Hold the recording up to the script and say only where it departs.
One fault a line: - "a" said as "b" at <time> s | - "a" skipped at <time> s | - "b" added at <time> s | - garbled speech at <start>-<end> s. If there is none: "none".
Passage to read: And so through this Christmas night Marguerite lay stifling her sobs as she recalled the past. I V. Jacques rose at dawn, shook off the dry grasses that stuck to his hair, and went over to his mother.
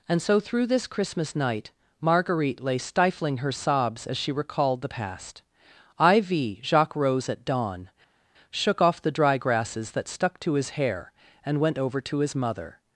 none